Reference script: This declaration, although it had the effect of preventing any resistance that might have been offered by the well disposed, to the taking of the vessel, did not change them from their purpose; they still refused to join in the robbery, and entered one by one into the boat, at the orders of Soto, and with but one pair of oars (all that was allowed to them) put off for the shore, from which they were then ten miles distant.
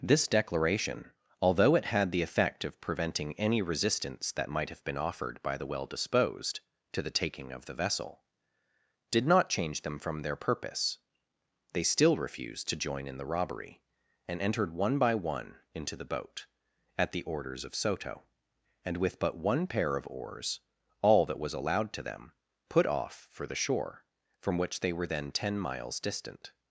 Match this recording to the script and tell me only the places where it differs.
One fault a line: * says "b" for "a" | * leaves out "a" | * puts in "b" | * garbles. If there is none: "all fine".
all fine